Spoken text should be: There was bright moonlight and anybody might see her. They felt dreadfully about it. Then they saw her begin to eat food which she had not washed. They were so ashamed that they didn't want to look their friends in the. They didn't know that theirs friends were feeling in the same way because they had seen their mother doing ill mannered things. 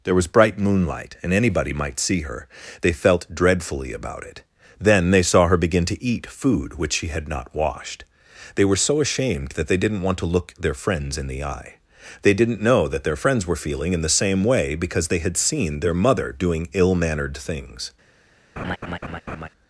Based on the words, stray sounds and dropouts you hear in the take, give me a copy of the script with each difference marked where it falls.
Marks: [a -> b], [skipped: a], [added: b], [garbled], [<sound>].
There was bright moonlight and anybody might see her. They felt dreadfully about it. Then they saw her begin to eat food which she had not washed. They were so ashamed that they didn't want to look their friends in the. [added: eye] They didn't know that [theirs -> their] friends were feeling in the same way because they had seen their mother doing ill mannered things. [laugh]